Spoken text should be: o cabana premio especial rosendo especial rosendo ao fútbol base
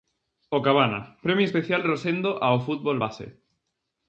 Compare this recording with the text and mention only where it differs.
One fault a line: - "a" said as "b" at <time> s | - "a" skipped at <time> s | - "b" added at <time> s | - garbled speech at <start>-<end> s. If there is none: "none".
- "especial rosendo" skipped at 2.3 s